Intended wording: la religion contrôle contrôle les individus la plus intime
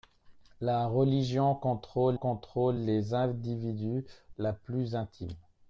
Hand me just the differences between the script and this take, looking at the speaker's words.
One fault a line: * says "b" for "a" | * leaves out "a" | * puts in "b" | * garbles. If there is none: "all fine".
all fine